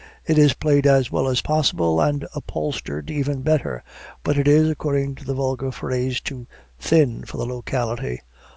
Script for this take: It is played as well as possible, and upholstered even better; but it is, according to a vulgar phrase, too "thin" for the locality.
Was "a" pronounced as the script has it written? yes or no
no